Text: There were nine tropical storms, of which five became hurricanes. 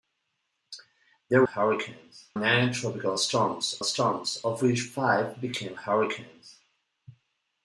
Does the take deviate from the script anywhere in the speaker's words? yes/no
yes